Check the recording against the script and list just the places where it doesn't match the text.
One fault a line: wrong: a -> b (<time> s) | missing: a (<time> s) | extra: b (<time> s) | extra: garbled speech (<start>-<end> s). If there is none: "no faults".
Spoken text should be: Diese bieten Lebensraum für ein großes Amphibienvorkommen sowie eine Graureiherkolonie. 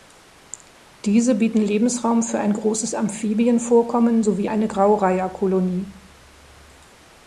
no faults